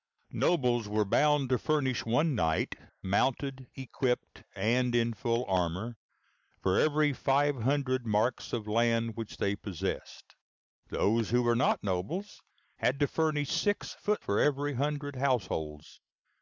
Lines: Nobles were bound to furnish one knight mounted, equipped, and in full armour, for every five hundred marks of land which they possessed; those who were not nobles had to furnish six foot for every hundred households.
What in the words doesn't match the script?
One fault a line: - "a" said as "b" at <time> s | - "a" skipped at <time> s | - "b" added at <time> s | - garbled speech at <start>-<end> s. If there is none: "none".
none